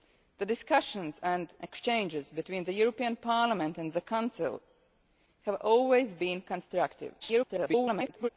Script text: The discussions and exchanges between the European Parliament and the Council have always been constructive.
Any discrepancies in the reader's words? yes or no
yes